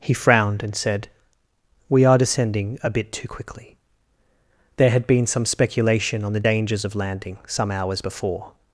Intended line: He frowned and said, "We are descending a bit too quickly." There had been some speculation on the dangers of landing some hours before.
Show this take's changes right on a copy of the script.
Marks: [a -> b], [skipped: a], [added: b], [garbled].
He frowned and said, "We are descending a bit too quickly." There had been some speculation on the dangers of landing some hours before.